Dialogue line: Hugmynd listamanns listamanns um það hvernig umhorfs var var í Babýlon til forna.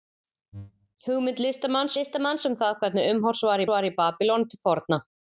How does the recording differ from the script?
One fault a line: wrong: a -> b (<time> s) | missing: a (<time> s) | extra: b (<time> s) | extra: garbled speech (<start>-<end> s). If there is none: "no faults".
no faults